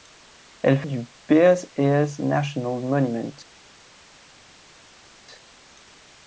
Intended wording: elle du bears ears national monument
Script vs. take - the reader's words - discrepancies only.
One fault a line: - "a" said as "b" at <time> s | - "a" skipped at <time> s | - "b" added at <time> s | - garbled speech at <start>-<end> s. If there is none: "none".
none